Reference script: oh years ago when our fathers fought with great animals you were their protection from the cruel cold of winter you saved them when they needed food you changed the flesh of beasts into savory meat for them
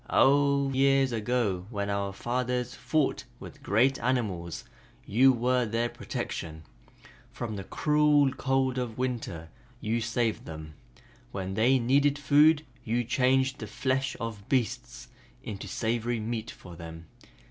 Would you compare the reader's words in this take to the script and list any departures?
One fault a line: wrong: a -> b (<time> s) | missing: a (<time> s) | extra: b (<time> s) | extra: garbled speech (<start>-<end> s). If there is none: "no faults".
no faults